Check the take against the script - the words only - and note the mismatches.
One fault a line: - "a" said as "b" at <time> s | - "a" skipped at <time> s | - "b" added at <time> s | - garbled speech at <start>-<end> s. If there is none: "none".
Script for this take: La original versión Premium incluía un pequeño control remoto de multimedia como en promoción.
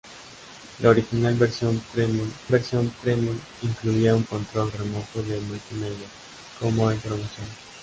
- "versión Premium" added at 2.5 s
- "pequeño" skipped at 4.2 s